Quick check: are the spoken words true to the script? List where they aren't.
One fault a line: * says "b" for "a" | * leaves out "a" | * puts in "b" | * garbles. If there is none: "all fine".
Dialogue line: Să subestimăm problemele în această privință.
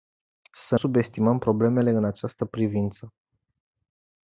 all fine